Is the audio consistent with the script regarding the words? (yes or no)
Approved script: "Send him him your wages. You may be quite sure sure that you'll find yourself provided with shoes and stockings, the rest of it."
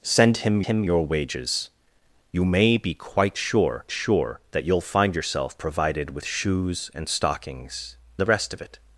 yes